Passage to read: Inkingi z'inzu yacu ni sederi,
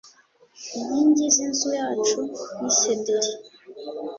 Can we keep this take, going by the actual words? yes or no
yes